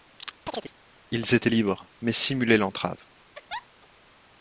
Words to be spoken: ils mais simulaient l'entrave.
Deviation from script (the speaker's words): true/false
true